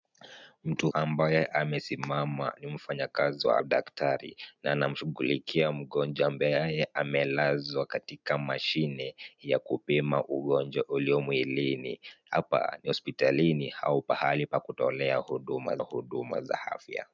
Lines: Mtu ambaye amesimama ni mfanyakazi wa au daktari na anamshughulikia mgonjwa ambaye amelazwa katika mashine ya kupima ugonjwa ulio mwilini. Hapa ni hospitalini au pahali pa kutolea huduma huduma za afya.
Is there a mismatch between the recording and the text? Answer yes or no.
no